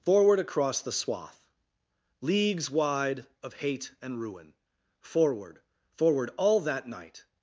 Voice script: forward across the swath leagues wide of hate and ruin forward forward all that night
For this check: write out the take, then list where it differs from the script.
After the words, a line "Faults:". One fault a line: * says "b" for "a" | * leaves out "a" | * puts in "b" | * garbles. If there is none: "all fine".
forward across the swath leagues wide of hate and ruin forward forward all that night
Faults:
all fine